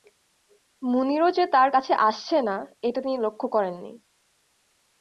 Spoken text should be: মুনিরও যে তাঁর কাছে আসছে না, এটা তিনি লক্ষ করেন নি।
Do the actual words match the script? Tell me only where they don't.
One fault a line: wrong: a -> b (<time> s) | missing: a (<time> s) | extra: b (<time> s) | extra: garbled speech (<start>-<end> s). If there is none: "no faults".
no faults